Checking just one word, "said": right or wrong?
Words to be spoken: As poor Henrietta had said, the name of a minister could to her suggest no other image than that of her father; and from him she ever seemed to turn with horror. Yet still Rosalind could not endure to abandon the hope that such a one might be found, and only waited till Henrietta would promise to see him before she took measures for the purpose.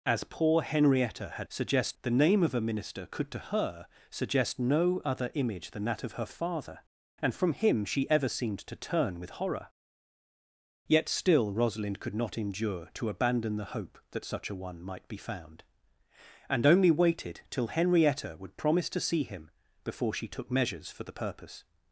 wrong